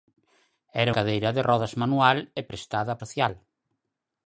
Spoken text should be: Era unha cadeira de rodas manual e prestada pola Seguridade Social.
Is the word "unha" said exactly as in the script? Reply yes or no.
no